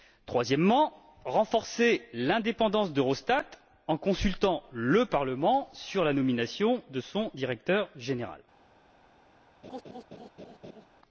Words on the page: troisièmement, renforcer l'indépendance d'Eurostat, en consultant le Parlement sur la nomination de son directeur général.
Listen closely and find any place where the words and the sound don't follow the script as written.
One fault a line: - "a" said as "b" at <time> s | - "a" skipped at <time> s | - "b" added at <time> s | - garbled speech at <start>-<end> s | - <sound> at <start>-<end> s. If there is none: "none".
- laugh at 9.6-10.9 s